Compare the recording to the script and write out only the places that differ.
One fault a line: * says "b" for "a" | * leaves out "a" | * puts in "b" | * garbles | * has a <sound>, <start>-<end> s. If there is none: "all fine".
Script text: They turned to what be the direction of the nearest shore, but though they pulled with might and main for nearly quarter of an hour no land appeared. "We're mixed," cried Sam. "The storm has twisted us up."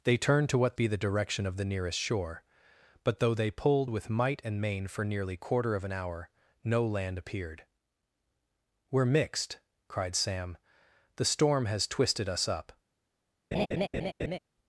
* has a laugh, 13.5-14.4 s